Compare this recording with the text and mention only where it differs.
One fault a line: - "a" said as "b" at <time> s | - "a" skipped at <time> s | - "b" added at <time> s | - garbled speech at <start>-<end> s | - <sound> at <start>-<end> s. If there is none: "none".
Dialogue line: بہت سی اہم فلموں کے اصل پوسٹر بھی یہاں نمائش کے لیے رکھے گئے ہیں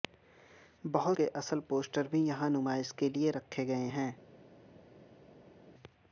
- "سی اہم فلموں" skipped at 1.2 s